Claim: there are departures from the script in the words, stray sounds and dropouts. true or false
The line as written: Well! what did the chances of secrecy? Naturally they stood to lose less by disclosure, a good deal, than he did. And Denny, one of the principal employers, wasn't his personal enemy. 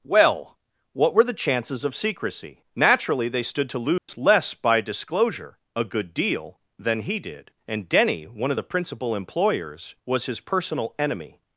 true